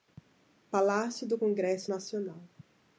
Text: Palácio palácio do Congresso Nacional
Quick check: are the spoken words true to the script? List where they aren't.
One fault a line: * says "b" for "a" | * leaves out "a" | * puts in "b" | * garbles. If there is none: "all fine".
* leaves out "palácio"